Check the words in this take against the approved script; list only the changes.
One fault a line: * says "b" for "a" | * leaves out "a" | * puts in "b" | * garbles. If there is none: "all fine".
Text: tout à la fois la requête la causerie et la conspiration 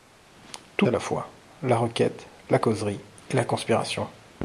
all fine